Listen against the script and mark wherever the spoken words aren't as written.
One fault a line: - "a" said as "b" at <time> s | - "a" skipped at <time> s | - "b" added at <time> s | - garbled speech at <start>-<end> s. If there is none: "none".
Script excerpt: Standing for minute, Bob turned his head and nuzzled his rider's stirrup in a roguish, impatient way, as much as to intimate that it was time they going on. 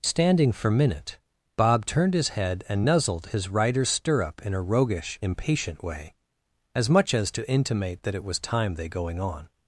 none